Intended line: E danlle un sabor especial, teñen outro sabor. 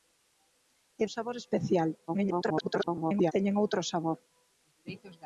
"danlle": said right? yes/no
no